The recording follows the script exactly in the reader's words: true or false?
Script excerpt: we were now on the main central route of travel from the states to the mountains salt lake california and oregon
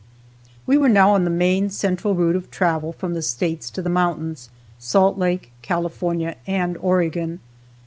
true